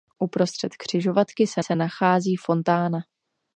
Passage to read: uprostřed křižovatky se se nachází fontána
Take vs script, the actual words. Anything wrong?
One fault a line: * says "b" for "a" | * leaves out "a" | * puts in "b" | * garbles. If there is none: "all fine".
all fine